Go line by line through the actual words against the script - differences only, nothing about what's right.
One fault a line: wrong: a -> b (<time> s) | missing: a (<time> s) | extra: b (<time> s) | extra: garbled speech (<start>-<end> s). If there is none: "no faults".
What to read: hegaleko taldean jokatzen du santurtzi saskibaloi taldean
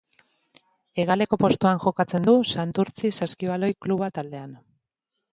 wrong: taldean -> postuan (1.4 s)
extra: kluba (3.9 s)